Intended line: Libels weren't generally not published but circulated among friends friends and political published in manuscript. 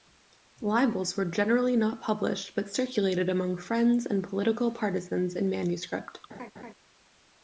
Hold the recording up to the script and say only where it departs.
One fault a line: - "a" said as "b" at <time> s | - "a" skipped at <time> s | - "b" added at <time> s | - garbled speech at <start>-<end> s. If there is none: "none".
- "weren't" said as "were" at 1.1 s
- "friends" skipped at 4.1 s
- "published" said as "partisans" at 4.7 s